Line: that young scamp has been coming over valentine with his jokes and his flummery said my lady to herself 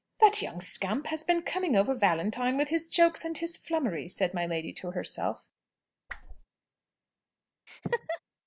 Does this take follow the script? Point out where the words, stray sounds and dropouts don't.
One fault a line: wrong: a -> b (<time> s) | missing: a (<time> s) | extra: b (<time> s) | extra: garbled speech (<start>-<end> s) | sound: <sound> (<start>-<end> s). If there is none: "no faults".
sound: whoosh (6.1-6.5 s)
sound: laugh (7.7-8.2 s)